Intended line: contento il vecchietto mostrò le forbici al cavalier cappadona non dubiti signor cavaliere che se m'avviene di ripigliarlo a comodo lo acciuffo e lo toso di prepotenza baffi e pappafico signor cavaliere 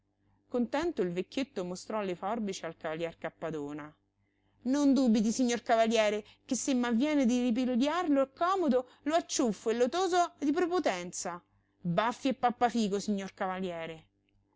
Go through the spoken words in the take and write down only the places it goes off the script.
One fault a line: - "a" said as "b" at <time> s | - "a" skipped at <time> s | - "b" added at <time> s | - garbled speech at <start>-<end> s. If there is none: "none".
none